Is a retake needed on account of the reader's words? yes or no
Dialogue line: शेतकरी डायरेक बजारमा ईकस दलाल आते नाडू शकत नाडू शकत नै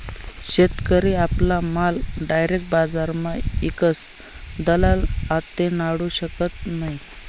yes